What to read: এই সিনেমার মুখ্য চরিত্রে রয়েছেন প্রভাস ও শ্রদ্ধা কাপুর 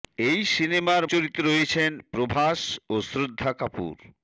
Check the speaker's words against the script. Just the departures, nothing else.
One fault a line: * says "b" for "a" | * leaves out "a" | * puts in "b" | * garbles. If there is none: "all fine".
* leaves out "মুখ্য"